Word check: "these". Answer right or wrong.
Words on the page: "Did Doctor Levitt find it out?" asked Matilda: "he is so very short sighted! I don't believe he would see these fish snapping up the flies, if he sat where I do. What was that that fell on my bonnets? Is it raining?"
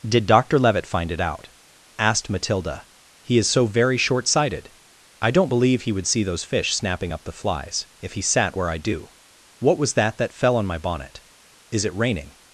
wrong